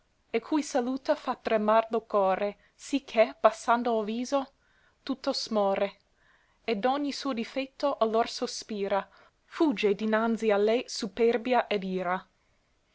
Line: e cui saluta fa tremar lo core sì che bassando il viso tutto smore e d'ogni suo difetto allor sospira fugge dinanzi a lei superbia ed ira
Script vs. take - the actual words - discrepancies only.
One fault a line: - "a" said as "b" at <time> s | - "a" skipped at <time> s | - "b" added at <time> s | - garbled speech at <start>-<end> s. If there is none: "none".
none